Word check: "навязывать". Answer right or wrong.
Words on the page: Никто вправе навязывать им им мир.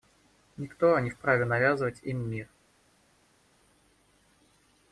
right